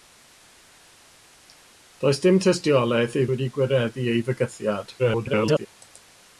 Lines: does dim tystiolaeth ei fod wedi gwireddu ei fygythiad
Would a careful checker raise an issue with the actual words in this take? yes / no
yes